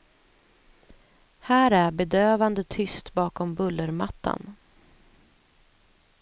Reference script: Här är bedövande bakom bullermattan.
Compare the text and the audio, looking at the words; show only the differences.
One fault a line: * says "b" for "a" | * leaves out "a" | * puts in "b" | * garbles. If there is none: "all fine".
* puts in "tyst"